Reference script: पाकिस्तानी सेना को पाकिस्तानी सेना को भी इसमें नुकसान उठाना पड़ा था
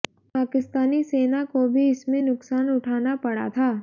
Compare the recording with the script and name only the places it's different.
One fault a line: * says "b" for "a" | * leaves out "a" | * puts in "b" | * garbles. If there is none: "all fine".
* leaves out "पाकिस्तानी सेना को"